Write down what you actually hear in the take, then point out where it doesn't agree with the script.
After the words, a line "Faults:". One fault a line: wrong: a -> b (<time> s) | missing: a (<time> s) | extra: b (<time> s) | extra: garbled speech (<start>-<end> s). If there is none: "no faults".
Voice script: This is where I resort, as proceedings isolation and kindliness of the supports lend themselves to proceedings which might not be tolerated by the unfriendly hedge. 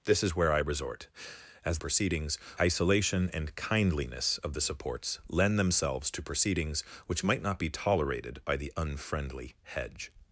This is where I resort, as proceedings isolation and kindliness of the supports lend themselves to proceedings which might not be tolerated by the unfriendly hedge.
Faults:
no faults